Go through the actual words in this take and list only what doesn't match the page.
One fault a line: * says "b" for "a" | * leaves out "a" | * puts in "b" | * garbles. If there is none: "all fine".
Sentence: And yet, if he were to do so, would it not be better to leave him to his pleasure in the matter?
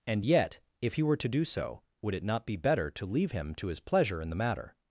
all fine